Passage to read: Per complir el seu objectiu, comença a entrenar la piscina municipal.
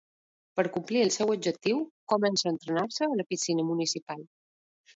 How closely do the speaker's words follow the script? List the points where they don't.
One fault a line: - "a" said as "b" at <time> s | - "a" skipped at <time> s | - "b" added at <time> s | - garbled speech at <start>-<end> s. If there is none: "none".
- "se a" added at 3.0 s